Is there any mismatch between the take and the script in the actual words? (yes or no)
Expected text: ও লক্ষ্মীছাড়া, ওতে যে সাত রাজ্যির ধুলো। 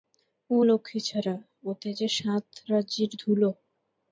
no